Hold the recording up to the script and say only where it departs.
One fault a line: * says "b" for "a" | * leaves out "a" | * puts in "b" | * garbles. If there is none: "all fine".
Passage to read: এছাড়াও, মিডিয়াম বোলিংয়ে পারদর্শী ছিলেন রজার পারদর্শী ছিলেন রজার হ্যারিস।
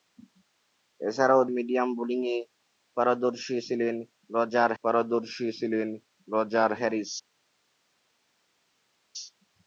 all fine